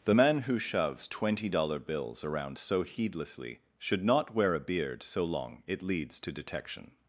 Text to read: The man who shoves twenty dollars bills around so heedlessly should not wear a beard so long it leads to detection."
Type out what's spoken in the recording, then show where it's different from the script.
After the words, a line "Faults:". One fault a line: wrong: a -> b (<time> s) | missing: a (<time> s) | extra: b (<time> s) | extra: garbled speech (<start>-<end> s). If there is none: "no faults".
The man who shoves twenty dollar bills around so heedlessly should not wear a beard so long it leads to detection."
Faults:
wrong: dollars -> dollar (1.5 s)